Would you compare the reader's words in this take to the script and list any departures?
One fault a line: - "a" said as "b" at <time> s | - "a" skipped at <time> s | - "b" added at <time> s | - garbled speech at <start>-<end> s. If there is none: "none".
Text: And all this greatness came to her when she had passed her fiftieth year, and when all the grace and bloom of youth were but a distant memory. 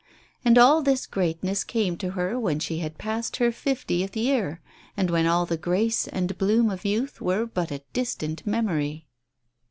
none